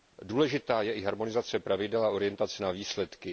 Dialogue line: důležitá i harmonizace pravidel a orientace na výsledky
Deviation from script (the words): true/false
true